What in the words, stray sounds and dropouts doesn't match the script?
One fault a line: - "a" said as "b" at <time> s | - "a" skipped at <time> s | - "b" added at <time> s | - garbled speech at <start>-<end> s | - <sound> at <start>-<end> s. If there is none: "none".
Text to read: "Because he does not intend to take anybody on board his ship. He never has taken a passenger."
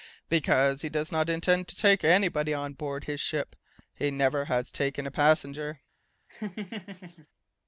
- laugh at 6.3-7.3 s